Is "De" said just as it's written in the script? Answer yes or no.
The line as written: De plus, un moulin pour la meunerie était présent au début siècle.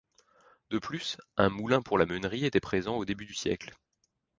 yes